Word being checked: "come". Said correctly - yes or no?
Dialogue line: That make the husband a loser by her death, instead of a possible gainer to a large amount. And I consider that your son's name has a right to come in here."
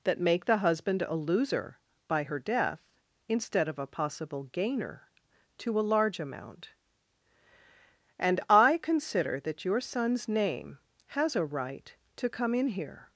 yes